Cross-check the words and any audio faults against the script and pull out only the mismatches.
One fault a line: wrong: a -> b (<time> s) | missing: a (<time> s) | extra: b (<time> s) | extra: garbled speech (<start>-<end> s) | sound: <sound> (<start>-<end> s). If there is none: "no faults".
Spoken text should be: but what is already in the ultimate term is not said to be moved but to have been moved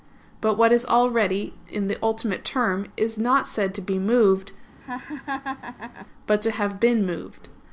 sound: laugh (4.8-6.1 s)